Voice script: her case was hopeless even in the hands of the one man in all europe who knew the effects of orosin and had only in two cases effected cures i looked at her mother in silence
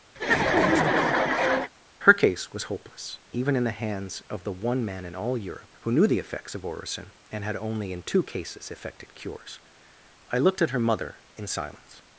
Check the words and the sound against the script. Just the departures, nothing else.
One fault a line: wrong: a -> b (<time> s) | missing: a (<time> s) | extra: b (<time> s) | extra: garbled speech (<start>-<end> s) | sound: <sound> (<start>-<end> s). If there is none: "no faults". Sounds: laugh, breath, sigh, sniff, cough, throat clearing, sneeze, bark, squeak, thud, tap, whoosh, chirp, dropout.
sound: laugh (0.2-1.7 s)